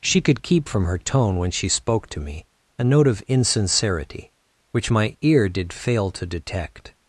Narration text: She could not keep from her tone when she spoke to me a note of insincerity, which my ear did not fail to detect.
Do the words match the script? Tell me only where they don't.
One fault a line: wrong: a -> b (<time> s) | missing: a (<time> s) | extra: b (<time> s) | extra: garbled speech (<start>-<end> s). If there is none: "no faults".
missing: not (0.4 s)
missing: not (5.7 s)